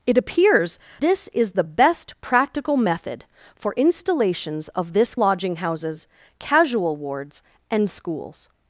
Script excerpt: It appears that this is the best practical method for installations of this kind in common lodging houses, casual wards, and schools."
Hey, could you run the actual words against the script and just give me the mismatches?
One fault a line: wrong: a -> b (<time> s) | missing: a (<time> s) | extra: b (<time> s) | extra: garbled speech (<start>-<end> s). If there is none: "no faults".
missing: that (0.8 s)
missing: kind in common (5.2 s)